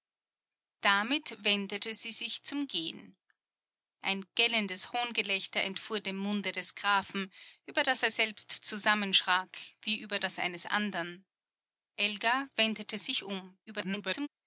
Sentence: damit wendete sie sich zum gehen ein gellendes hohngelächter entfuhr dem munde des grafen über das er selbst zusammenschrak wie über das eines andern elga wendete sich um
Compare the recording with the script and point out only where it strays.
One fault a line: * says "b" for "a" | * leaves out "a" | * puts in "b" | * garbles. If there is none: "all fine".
* garbles